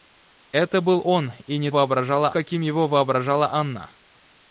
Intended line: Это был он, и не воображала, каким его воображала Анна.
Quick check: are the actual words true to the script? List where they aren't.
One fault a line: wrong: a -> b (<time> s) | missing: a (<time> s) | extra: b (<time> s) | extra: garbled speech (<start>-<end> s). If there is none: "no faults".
no faults